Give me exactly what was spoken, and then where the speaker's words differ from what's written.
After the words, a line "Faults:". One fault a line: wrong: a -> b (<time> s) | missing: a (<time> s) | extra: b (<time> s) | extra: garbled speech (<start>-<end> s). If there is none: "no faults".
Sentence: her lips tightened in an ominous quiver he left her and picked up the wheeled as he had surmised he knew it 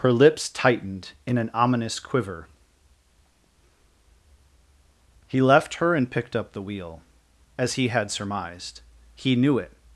her lips tightened in an ominous quiver he left her and picked up the wheel as he had surmised he knew it
Faults:
wrong: wheeled -> wheel (6.6 s)